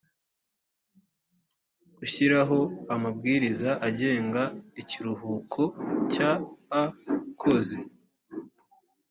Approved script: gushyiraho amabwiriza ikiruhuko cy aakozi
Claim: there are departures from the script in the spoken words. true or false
true